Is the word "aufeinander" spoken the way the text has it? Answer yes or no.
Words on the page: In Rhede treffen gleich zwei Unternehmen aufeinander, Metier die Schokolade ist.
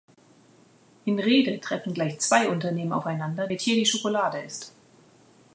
yes